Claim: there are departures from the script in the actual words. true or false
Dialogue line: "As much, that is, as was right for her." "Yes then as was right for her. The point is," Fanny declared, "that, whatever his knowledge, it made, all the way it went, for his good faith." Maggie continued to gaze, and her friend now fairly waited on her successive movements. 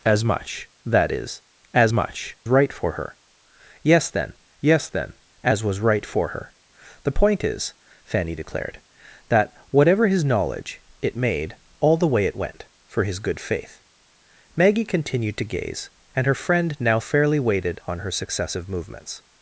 true